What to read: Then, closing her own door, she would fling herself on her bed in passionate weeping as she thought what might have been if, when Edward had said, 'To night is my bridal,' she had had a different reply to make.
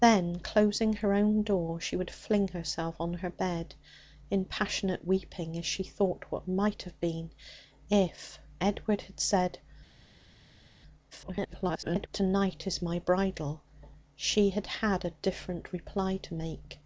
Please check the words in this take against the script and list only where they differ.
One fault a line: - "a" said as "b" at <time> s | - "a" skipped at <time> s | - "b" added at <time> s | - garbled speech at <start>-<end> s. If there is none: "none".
- "when" skipped at 8.4 s
- garbled speech at 11.1-12.1 s